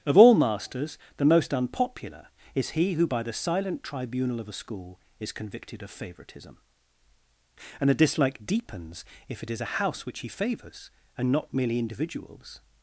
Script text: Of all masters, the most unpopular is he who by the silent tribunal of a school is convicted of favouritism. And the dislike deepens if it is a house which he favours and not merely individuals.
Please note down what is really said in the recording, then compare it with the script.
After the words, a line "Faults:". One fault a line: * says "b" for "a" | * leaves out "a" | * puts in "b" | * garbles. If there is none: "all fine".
Of all masters, the most unpopular is he who by the silent tribunal of a school is convicted of favouritism. And the dislike deepens if it is a house which he favours and not merely individuals.
Faults:
all fine